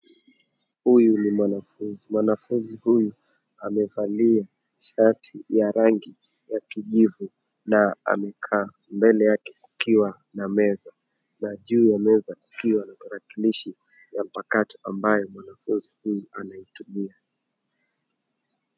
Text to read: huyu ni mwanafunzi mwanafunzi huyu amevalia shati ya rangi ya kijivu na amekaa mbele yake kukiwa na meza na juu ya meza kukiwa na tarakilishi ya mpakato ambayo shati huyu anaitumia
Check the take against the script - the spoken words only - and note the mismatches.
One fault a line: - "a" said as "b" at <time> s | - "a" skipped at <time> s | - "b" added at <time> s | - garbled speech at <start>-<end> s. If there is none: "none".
- "shati" said as "mwanafunzi" at 15.3 s